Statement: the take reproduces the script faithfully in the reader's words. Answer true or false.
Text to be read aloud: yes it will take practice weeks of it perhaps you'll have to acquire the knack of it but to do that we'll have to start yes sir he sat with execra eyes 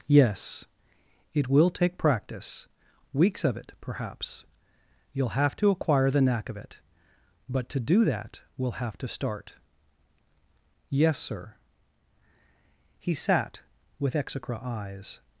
true